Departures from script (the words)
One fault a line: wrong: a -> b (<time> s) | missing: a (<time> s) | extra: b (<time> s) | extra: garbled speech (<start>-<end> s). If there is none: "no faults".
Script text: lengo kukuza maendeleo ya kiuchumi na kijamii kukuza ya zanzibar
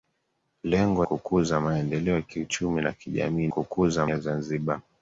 no faults